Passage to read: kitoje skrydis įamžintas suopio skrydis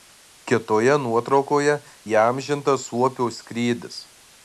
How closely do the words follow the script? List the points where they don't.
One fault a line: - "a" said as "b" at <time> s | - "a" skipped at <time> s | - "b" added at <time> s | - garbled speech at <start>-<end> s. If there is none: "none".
- "skrydis" said as "nuotraukoje" at 1.0 s